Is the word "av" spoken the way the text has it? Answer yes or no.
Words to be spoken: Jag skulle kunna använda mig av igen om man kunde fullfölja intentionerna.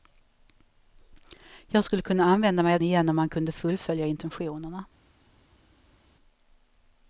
yes